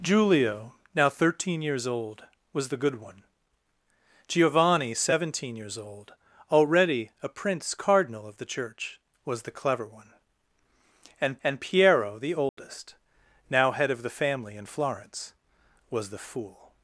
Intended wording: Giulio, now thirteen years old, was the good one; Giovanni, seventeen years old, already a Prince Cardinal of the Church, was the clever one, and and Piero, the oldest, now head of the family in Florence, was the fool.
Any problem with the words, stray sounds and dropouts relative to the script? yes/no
yes